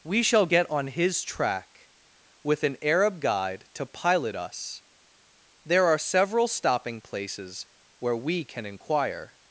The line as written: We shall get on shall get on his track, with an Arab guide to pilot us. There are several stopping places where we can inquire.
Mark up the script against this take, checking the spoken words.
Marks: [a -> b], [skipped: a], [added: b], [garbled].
We shall get on [skipped: shall get on] his track, with an Arab guide to pilot us. There are several stopping places where we can inquire.